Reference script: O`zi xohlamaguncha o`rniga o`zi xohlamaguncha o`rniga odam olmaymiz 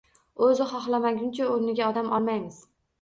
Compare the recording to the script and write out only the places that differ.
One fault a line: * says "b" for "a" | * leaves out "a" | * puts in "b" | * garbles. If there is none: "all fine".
* leaves out "o`zi xohlamaguncha o`rniga"